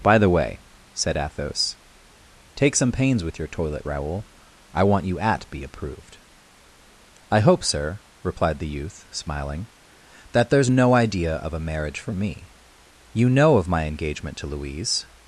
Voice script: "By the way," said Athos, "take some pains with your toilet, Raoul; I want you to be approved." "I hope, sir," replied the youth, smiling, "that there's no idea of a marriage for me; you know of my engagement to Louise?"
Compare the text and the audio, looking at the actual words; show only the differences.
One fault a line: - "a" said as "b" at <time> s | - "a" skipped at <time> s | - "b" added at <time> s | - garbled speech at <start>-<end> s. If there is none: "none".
- "to" said as "at" at 5.2 s